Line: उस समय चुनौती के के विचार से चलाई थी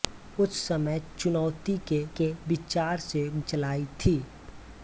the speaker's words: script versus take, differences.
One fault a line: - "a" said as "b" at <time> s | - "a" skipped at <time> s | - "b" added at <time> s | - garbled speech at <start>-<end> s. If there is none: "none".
none